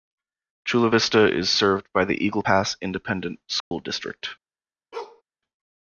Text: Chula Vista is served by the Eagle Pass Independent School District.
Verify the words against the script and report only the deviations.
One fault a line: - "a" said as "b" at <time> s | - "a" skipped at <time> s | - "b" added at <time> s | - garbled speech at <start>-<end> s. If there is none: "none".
none